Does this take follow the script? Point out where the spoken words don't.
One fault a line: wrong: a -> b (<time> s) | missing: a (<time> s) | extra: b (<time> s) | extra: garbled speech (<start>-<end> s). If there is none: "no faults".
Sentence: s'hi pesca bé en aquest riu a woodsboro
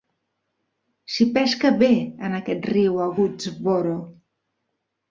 no faults